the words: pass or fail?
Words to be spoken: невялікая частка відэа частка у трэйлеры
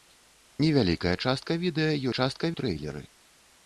pass